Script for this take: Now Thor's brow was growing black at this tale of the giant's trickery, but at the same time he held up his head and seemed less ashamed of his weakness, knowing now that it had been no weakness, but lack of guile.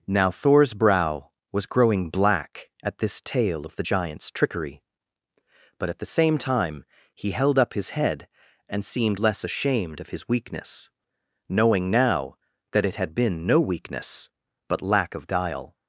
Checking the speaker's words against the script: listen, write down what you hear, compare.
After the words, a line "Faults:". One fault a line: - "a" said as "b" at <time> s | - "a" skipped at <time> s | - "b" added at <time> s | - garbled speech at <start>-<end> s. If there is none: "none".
Now Thor's brow was growing black at this tale of the giant's trickery, but at the same time he held up his head and seemed less ashamed of his weakness, knowing now that it had been no weakness, but lack of guile.
Faults:
none